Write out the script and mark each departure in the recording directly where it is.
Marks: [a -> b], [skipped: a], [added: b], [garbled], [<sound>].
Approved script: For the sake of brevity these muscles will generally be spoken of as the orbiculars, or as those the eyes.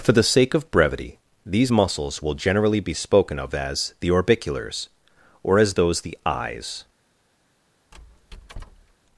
For the sake of brevity these muscles will generally be spoken of as the orbiculars, or as those the eyes. [squeak]